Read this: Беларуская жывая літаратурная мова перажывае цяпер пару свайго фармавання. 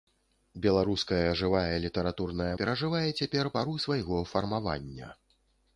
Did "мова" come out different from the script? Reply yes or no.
yes